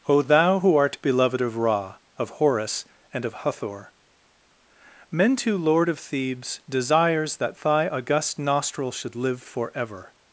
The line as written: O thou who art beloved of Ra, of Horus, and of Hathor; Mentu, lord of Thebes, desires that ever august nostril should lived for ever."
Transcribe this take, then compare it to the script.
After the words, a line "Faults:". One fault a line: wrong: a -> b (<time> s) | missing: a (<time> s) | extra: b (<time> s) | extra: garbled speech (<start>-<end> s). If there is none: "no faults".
O thou who art beloved of Ra, of Horus, and of Hathor; Mentu, lord of Thebes, desires that thy august nostril should live for ever."
Faults:
wrong: ever -> thy (7.6 s)
wrong: lived -> live (9.2 s)